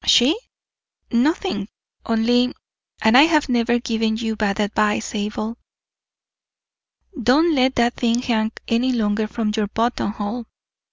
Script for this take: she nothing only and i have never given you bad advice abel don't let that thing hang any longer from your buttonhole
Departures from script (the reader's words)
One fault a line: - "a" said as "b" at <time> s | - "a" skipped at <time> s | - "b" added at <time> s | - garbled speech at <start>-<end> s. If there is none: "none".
none